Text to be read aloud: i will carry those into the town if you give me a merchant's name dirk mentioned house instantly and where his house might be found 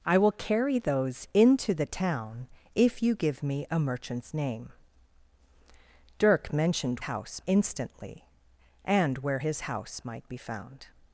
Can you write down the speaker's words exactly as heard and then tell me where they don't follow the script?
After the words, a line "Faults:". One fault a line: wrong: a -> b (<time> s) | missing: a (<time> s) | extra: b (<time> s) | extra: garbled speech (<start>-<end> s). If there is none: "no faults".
i will carry those into the town if you give me a merchant's name dirk mentioned house instantly and where his house might be found
Faults:
no faults